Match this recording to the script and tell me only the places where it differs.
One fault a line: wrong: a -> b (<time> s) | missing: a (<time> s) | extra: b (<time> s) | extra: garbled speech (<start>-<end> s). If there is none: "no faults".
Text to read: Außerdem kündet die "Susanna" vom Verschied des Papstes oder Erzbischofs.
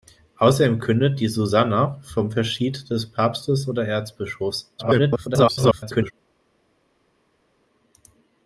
extra: garbled speech (4.8-6.1 s)